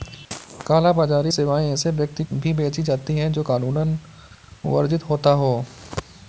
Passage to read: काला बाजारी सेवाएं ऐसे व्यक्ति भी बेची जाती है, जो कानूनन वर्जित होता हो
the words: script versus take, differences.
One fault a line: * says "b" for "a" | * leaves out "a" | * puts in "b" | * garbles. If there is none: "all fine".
all fine